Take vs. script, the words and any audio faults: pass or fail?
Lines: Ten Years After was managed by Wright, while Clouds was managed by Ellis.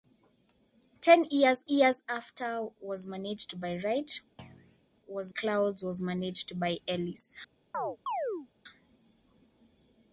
fail